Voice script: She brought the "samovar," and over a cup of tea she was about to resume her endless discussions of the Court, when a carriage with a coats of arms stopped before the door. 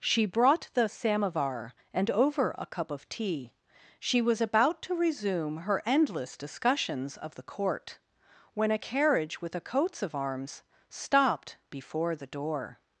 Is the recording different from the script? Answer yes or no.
no